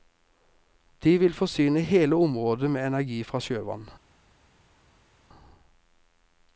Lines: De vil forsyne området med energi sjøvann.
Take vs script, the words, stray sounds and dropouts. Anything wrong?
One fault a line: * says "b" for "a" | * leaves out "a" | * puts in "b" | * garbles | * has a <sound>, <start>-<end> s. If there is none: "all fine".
* puts in "hele"
* puts in "fra"